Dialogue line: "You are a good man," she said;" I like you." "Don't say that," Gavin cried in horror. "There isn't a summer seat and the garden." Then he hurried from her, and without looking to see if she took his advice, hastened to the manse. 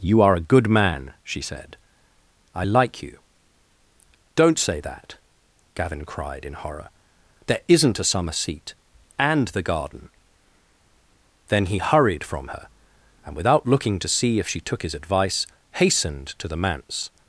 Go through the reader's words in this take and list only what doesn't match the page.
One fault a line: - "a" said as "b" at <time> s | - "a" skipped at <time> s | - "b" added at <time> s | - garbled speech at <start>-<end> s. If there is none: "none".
none